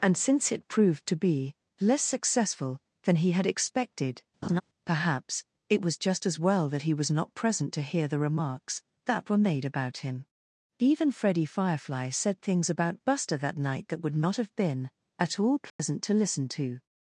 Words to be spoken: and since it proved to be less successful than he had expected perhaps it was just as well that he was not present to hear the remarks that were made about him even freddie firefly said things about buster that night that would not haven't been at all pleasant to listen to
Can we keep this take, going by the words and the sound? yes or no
no